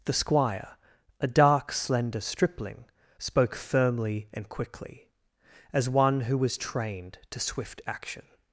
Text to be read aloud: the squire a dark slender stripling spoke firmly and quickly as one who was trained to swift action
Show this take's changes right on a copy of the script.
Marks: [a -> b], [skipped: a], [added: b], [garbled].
the squire a dark slender stripling spoke firmly and quickly as one who was trained to swift action